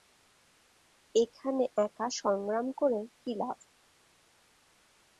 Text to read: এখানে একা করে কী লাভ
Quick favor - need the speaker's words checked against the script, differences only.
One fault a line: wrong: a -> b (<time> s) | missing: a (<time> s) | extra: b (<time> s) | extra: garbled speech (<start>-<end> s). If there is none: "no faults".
extra: সংগ্রাম (2.2 s)